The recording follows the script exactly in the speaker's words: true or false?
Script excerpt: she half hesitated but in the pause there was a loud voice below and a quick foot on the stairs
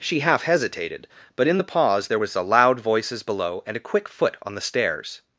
false